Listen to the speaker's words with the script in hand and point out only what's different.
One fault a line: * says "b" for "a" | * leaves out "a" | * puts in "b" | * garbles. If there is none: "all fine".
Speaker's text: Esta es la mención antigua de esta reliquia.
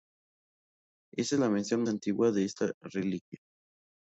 all fine